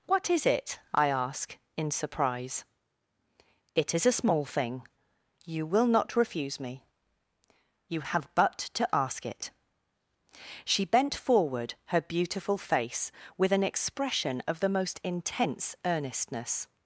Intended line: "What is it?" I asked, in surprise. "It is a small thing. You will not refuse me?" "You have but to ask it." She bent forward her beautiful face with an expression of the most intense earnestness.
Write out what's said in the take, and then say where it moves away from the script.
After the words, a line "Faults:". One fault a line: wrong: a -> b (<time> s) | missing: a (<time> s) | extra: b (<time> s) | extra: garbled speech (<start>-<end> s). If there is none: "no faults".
"What is it?" I ask, in surprise. "It is a small thing. You will not refuse me?" "You have but to ask it." She bent forward her beautiful face with an expression of the most intense earnestness.
Faults:
wrong: asked -> ask (1.1 s)